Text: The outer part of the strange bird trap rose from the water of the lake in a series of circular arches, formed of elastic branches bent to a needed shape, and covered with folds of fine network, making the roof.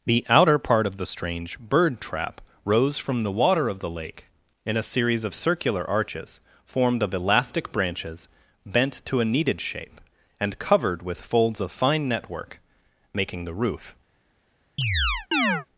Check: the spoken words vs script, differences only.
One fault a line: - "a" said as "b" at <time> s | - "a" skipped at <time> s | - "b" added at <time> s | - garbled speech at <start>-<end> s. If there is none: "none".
none